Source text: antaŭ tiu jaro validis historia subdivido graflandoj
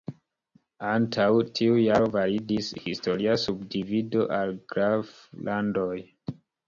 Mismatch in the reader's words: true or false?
true